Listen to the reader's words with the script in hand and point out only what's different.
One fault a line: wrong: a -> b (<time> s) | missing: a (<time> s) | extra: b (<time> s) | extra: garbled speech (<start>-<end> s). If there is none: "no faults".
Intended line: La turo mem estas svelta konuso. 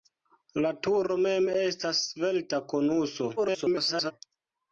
extra: garbled speech (3.4-4.1 s)